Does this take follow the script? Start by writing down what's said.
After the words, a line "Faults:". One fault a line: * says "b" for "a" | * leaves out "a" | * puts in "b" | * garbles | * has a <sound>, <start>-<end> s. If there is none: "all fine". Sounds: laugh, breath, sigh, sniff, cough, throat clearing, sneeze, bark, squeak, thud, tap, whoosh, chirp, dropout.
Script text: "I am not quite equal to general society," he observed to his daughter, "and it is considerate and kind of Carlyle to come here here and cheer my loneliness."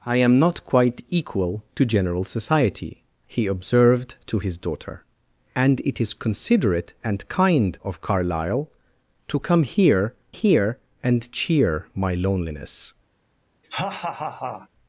"I am not quite equal to general society," he observed to his daughter, "and it is considerate and kind of Carlyle to come here here and cheer my loneliness."
Faults:
* has a laugh, 13.6-14.7 s